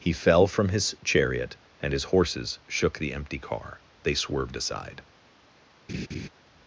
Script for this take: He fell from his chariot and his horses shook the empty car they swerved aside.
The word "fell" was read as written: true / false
true